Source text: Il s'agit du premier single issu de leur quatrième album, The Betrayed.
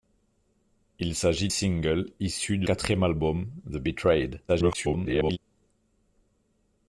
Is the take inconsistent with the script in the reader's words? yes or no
yes